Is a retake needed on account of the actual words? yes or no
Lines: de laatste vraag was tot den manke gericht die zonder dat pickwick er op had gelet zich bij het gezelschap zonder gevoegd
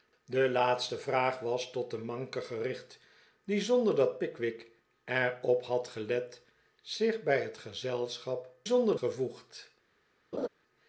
no